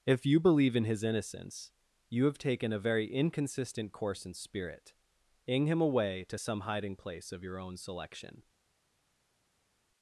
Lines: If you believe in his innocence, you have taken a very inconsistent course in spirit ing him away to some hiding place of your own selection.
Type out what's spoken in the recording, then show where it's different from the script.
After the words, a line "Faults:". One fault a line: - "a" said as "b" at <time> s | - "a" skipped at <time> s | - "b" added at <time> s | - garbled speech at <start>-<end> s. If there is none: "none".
If you believe in his innocence, you have taken a very inconsistent course in spirit ing him away to some hiding place of your own selection.
Faults:
none